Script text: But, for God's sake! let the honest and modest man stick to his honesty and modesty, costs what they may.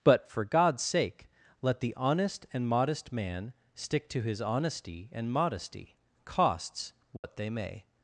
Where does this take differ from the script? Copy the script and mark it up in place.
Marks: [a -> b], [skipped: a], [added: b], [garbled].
But, for God's sake! let the honest and modest man stick to his honesty and modesty, costs what they may.